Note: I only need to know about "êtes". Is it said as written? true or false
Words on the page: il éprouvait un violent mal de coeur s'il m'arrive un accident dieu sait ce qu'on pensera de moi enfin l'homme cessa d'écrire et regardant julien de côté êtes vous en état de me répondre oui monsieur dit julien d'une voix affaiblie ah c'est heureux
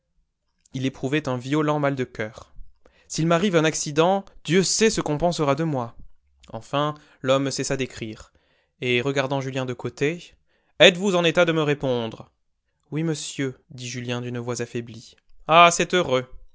true